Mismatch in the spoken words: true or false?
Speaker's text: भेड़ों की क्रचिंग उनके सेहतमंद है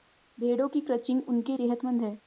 false